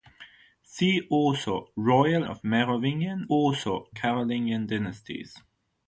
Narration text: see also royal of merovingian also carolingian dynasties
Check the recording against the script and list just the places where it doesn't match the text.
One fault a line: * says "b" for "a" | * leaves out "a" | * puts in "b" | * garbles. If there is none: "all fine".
all fine